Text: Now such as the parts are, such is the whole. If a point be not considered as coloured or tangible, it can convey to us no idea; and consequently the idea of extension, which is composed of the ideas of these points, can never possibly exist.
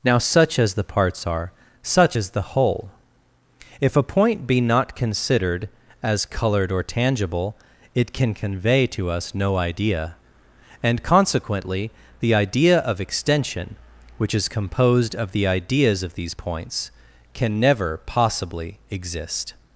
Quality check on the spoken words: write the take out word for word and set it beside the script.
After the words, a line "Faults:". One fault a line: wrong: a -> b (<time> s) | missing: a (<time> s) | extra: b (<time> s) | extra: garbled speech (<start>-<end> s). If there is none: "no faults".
Now such as the parts are, such is the whole. If a point be not considered as coloured or tangible, it can convey to us no idea; and consequently the idea of extension, which is composed of the ideas of these points, can never possibly exist.
Faults:
no faults